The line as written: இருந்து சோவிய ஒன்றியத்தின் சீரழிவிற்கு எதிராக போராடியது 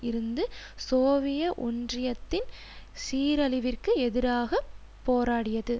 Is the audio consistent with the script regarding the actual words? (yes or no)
yes